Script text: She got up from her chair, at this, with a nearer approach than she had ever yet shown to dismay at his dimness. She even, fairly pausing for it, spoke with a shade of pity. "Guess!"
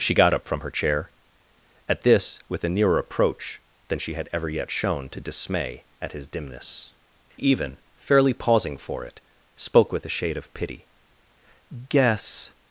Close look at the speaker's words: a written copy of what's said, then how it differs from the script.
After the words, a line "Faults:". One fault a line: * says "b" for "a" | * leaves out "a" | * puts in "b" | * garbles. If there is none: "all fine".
She got up from her chair, at this, with a nearer approach than she had ever yet shown to dismay at his dimness. Even, fairly pausing for it, spoke with a shade of pity. "Guess!"
Faults:
* leaves out "She"